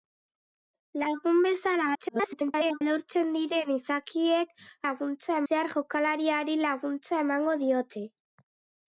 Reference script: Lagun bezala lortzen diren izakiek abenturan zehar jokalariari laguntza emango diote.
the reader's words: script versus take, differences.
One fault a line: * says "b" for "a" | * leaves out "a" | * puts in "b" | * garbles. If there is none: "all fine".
* garbles
* says "laguntza" for "abenturan"